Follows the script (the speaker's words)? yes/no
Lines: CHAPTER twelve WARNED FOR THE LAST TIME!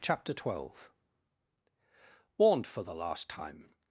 yes